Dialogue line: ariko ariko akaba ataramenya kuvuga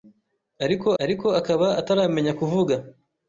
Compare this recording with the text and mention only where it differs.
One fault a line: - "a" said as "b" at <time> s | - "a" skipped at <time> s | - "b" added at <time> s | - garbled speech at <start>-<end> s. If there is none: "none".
none